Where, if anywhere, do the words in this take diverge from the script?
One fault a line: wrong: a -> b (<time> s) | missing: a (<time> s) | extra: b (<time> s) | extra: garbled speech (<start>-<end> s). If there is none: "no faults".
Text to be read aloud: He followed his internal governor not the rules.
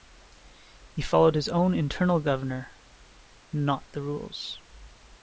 extra: own (1.5 s)